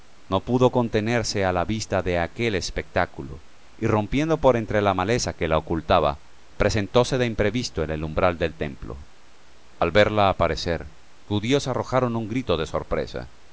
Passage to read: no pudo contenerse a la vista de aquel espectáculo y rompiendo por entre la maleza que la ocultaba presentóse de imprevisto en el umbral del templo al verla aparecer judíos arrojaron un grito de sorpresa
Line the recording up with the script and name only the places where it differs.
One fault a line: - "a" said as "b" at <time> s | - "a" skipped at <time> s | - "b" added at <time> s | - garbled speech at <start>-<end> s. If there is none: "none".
none